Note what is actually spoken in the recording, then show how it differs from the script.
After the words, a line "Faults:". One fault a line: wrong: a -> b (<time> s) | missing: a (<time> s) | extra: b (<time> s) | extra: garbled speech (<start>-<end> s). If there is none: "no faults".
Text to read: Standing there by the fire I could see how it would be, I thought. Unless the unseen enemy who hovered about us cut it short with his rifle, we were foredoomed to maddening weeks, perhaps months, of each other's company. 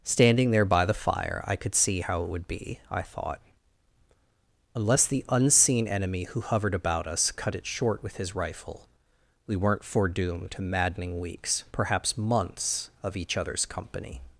Standing there by the fire I could see how it would be, I thought. Unless the unseen enemy who hovered about us cut it short with his rifle, we weren't foredoomed to maddening weeks, perhaps months, of each other's company.
Faults:
wrong: were -> weren't (9.5 s)